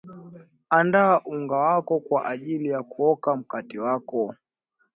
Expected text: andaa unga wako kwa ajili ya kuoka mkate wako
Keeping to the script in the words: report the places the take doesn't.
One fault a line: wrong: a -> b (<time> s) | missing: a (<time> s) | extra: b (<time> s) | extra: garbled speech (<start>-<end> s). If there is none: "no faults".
no faults